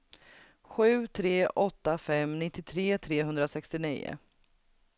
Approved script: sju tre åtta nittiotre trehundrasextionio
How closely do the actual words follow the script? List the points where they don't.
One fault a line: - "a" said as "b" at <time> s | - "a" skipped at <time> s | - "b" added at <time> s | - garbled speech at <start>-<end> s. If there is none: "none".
- "fem" added at 2.0 s